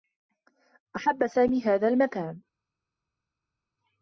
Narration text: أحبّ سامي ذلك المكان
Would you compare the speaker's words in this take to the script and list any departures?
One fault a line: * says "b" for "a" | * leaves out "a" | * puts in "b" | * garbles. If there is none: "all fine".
* says "هذا" for "ذلك"